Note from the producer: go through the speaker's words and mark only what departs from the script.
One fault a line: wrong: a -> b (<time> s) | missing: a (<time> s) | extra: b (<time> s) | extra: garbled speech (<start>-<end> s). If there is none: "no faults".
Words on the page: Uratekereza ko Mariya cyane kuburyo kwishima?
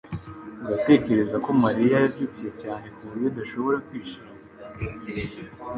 extra: yabyibushye (2.0 s)
extra: adashobora (3.3 s)